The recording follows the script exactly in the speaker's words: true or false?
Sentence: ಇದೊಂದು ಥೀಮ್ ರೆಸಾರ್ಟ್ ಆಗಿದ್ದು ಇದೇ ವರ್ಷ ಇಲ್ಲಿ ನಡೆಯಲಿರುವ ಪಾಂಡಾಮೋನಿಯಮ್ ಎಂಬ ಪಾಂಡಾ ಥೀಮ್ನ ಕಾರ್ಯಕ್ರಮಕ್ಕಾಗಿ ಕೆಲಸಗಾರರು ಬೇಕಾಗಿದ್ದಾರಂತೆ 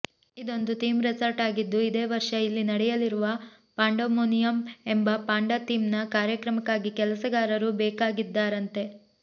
true